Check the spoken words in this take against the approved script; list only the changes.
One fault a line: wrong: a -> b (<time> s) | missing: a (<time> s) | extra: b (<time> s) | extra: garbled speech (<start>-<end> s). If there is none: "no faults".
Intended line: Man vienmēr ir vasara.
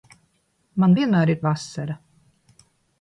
no faults